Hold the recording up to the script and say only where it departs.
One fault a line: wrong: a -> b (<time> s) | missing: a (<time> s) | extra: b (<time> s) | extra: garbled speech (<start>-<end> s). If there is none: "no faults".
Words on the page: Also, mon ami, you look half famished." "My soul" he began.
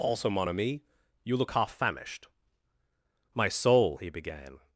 no faults